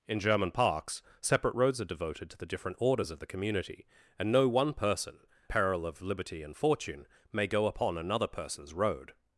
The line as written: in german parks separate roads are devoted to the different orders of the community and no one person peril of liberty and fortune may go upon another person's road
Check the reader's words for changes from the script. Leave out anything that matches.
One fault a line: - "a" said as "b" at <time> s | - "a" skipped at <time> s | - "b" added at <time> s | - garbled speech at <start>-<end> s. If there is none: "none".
none